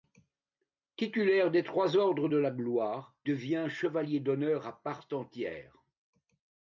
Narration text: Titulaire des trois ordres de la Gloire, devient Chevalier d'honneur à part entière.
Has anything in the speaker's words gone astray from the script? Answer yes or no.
no